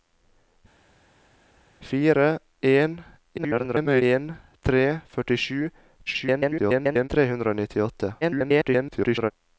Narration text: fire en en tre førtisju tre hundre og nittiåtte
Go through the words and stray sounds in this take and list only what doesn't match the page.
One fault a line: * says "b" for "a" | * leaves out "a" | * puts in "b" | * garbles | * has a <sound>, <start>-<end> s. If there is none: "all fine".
* garbles
* garbles
* garbles